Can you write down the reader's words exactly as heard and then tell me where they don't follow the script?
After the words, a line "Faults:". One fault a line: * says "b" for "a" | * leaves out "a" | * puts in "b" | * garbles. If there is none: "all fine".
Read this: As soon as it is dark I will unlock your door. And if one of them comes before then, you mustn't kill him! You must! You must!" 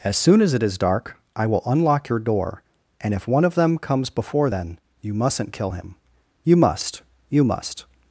As soon as it is dark I will unlock your door. And if one of them comes before then, you mustn't kill him! You must! You must!"
Faults:
all fine